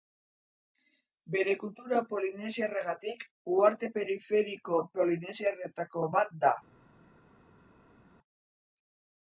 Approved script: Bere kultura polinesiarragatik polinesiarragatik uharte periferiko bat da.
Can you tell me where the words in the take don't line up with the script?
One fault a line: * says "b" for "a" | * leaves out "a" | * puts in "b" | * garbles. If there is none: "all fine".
* leaves out "polinesiarragatik"
* puts in "polinesiarretako"